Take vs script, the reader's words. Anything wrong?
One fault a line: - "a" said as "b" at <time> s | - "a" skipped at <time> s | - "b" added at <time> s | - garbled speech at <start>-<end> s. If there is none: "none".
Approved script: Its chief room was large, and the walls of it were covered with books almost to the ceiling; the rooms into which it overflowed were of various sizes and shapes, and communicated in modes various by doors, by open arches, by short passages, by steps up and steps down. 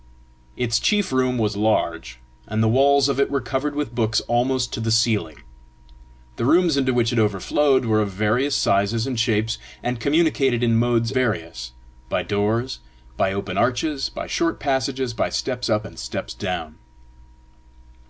none